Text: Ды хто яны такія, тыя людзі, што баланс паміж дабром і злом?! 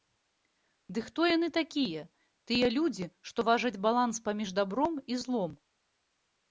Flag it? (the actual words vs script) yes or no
yes